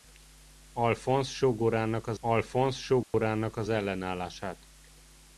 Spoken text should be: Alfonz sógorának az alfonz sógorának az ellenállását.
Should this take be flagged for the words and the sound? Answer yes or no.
yes